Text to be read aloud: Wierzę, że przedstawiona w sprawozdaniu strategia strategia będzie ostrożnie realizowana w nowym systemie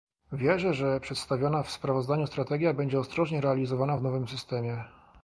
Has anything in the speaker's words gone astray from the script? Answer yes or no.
yes